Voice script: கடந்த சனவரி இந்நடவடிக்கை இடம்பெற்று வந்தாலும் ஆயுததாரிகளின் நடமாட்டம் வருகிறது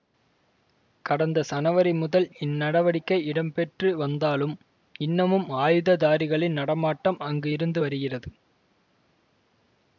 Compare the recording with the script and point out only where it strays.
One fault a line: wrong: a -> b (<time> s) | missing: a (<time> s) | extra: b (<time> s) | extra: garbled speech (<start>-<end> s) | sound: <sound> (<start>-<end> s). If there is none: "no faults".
extra: முதல் (1.9 s)
extra: இன்னமும் (5.0 s)
extra: அங்கு இருந்து (7.3 s)